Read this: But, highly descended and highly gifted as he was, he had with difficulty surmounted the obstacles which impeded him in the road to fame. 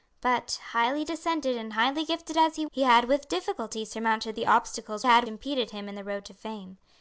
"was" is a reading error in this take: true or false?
true